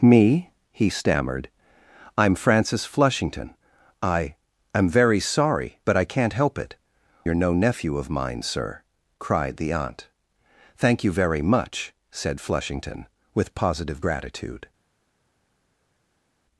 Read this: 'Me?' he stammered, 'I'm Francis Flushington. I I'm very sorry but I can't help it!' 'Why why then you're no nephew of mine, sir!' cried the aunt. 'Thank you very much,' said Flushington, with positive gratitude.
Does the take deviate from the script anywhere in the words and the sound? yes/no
yes